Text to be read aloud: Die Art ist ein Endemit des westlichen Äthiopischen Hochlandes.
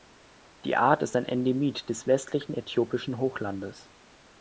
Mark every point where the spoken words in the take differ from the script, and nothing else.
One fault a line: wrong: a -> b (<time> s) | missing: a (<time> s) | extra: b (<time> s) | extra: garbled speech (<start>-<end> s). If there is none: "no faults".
no faults